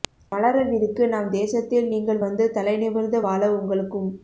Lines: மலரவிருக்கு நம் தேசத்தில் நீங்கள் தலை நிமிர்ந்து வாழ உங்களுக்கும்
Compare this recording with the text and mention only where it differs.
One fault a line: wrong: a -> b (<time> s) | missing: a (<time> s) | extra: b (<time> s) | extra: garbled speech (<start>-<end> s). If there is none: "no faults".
extra: வந்து (2.2 s)